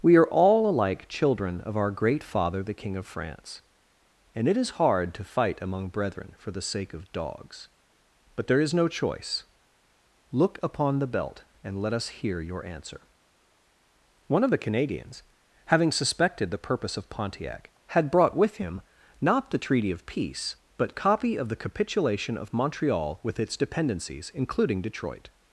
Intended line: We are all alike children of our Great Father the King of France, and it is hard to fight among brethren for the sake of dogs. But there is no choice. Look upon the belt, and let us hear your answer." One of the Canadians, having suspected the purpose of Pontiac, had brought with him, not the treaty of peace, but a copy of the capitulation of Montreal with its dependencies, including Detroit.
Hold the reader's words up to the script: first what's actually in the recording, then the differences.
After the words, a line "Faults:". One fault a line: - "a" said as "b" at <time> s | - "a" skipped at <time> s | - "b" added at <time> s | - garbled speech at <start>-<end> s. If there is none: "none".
We are all alike children of our Great Father the King of France, and it is hard to fight among brethren for the sake of dogs. But there is no choice. Look upon the belt, and let us hear your answer." One of the Canadians, having suspected the purpose of Pontiac, had brought with him, not the treaty of peace, but copy of the capitulation of Montreal with its dependencies, including Detroit.
Faults:
- "a" skipped at 20.9 s